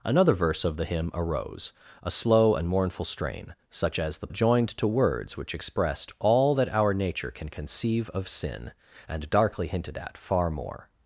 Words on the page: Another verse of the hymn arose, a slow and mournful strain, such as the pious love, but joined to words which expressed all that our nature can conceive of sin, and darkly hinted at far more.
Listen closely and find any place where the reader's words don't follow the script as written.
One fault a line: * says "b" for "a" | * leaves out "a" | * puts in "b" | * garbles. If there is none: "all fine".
* leaves out "pious love but"